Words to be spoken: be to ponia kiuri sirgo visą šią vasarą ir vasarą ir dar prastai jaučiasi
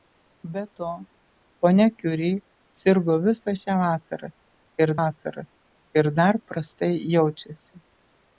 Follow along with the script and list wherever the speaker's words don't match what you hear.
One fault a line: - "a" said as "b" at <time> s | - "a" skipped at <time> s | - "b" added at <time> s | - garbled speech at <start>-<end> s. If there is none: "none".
none